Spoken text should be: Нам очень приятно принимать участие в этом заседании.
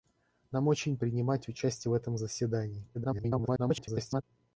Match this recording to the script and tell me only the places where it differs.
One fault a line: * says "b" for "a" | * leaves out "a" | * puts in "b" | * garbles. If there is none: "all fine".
* leaves out "приятно"
* garbles